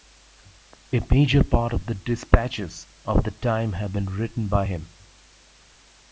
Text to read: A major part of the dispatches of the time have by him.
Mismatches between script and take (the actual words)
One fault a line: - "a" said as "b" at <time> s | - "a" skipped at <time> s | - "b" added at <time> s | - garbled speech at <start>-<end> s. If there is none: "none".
- "been written" added at 3.9 s